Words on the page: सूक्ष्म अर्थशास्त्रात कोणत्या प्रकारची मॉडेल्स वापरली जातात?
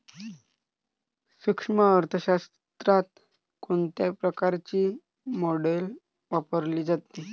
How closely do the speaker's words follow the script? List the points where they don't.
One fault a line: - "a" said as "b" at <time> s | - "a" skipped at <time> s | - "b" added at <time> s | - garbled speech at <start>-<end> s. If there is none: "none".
none